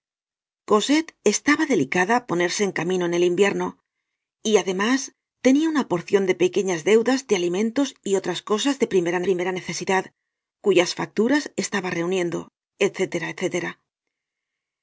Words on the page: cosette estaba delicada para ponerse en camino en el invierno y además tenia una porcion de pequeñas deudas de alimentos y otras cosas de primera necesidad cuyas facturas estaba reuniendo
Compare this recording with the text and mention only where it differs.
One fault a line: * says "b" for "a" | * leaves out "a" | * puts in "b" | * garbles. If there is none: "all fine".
* leaves out "para"
* puts in "primera"